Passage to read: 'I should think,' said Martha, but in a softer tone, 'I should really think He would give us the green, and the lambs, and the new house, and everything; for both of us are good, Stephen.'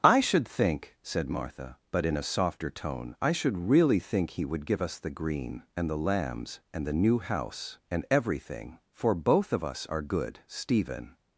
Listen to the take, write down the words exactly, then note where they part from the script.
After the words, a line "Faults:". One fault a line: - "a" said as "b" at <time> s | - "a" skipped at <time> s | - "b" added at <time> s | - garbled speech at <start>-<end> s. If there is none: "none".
'I should think,' said Martha, but in a softer tone, 'I should really think He would give us the green, and the lambs, and the new house, and everything; for both of us are good, Stephen.'
Faults:
none